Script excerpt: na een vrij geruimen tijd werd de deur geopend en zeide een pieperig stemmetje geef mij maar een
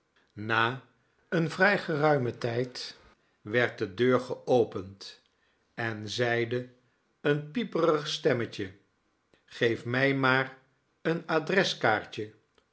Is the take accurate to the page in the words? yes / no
yes